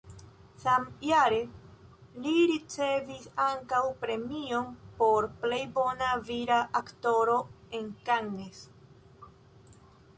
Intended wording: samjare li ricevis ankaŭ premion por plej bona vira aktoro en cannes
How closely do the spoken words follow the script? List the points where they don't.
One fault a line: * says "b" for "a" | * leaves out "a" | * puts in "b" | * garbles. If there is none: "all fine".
all fine